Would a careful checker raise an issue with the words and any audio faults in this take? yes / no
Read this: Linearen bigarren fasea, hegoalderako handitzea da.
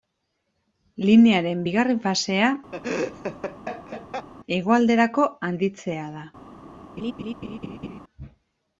yes